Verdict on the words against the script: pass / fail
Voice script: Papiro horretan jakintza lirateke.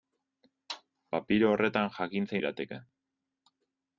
pass